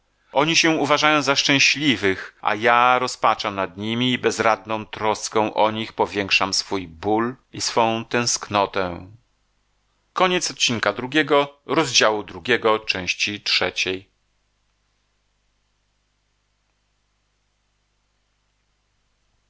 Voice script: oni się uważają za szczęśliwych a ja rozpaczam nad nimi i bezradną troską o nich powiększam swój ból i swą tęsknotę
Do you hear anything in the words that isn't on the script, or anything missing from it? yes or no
no